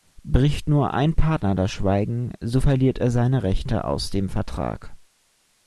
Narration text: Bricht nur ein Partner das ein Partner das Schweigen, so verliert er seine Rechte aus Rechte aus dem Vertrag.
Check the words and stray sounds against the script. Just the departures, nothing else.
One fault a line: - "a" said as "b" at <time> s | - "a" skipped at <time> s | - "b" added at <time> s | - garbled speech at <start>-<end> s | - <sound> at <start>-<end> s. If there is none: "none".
- "ein Partner das" skipped at 1.7 s
- "Rechte aus" skipped at 4.1 s